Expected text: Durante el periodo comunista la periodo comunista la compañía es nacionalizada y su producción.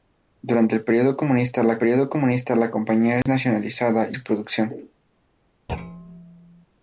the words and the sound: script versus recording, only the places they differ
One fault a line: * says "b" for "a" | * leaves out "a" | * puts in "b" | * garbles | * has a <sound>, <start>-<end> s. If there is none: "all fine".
* has a dropout, 3.2-3.3 s
* has a thud, 5.7-6.7 s